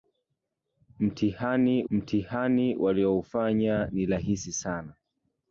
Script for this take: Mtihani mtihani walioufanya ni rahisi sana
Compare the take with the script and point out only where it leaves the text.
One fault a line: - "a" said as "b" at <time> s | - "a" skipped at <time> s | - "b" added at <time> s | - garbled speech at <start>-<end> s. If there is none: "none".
none